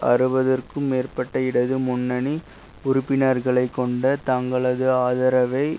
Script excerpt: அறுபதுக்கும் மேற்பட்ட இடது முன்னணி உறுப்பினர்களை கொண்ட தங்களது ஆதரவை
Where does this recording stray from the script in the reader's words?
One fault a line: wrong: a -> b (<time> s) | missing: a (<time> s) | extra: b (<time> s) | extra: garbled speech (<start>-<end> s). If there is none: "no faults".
no faults